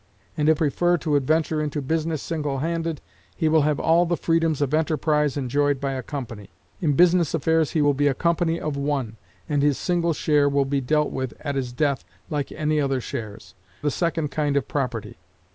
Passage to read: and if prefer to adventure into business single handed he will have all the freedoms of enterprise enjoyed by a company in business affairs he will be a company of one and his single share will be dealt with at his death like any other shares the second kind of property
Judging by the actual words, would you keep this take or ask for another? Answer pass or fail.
pass